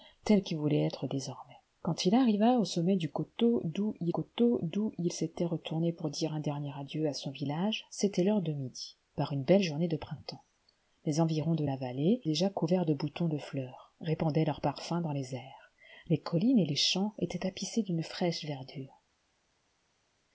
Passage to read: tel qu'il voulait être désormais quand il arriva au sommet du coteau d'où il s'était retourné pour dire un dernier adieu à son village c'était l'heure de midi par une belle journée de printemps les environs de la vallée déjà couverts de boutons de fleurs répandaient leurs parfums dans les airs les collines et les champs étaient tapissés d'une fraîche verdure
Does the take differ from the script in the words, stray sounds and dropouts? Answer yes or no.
yes